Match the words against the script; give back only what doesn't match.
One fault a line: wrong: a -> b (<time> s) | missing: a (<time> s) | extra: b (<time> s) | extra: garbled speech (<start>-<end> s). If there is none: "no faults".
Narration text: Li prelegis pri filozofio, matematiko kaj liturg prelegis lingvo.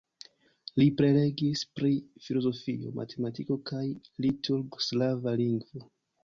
wrong: prelegis -> slava (4.9 s)